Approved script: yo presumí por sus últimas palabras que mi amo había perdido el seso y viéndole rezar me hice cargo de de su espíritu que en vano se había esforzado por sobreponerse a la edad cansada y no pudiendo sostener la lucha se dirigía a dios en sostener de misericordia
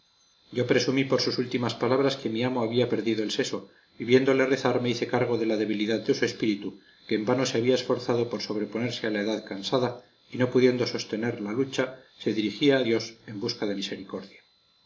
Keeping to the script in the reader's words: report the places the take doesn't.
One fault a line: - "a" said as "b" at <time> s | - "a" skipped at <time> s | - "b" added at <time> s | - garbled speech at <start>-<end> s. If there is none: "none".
- "la debilidad" added at 5.5 s
- "sostener" said as "busca" at 13.4 s